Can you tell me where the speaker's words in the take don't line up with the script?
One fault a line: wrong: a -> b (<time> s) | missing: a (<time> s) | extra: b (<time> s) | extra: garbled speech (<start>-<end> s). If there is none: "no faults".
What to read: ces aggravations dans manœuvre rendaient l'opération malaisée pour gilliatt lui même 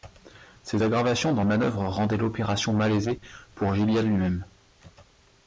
no faults